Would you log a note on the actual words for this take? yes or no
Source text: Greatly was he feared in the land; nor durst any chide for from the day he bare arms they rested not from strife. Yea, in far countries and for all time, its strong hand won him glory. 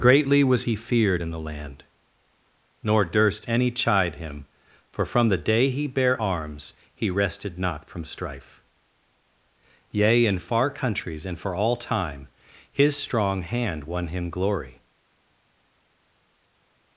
yes